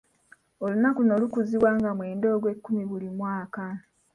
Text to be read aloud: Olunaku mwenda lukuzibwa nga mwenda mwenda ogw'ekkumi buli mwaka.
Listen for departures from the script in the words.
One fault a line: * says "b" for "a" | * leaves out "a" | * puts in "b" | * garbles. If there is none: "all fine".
* says "luno" for "mwenda"
* leaves out "mwenda"